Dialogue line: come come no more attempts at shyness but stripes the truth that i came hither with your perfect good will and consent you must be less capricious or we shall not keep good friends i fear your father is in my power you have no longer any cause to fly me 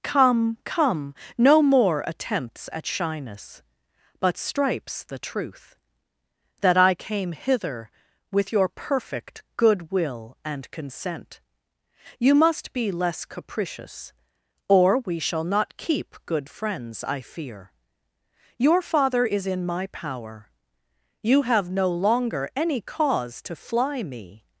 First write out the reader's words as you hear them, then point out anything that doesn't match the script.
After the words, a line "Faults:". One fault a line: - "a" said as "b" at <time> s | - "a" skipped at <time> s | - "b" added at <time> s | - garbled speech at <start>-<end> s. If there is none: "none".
come come no more attempts at shyness but stripes the truth that i came hither with your perfect good will and consent you must be less capricious or we shall not keep good friends i fear your father is in my power you have no longer any cause to fly me
Faults:
none